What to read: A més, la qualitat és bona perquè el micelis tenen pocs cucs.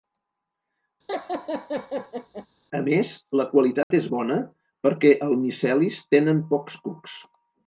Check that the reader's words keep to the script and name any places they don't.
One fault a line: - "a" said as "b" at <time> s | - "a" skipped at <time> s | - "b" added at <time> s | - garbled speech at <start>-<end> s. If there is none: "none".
none